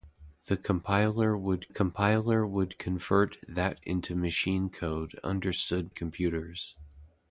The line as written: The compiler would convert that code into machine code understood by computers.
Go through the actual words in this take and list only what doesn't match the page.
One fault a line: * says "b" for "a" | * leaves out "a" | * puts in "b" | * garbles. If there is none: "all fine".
* puts in "compiler would"
* leaves out "code"
* leaves out "by"